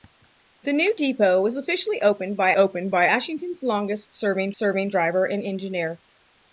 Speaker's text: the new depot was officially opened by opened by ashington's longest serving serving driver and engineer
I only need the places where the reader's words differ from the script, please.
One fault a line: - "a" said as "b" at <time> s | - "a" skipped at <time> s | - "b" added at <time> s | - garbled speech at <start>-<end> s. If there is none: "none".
none